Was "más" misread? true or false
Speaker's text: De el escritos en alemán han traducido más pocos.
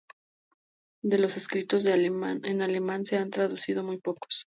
true